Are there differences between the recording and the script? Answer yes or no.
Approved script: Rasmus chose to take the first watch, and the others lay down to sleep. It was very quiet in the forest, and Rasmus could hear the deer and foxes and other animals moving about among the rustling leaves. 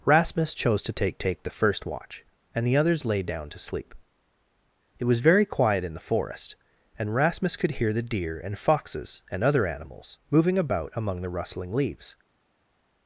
yes